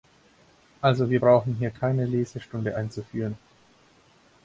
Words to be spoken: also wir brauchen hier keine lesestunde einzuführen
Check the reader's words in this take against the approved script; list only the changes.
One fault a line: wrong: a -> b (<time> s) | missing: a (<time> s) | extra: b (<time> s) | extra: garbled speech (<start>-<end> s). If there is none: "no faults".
no faults